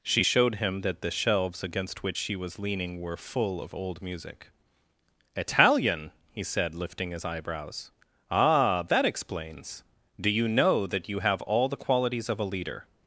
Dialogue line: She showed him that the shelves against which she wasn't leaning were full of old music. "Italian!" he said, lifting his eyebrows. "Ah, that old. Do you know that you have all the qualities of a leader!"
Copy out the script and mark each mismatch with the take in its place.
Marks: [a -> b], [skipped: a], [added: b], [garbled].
She showed him that the shelves against which she [wasn't -> was] leaning were full of old music. "Italian!" he said, lifting his eyebrows. "Ah, that [old. -> explains] Do you know that you have all the qualities of a leader!"